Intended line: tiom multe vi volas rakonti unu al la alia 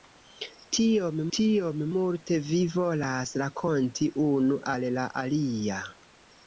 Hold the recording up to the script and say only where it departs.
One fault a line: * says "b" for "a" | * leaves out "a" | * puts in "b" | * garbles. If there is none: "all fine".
* puts in "tiom"